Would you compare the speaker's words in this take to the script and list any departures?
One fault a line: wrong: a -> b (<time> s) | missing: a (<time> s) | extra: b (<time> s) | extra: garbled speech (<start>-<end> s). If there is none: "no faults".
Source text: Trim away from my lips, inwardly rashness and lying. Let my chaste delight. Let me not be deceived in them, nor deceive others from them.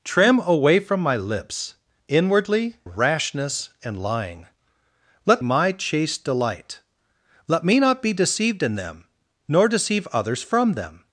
no faults